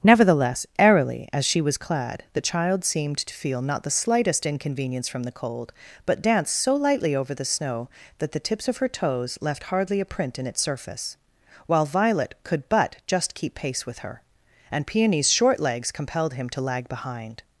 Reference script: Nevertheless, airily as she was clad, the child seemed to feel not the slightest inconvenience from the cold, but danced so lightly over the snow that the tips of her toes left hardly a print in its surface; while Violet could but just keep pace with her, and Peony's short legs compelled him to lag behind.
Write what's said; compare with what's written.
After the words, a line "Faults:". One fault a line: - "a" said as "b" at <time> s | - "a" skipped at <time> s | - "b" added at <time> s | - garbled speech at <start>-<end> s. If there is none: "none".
Nevertheless, airily as she was clad, the child seemed to feel not the slightest inconvenience from the cold, but danced so lightly over the snow that the tips of her toes left hardly a print in its surface; while Violet could but just keep pace with her, and Peony's short legs compelled him to lag behind.
Faults:
none